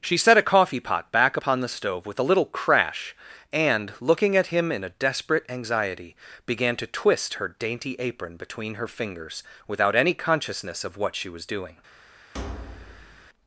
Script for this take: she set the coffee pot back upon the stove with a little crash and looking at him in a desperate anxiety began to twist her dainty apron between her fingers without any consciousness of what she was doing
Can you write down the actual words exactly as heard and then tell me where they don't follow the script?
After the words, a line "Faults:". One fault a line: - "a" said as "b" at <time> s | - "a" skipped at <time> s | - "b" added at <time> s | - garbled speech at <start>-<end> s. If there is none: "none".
she set a coffee pot back upon the stove with a little crash and looking at him in a desperate anxiety began to twist her dainty apron between her fingers without any consciousness of what she was doing
Faults:
- "the" said as "a" at 0.4 s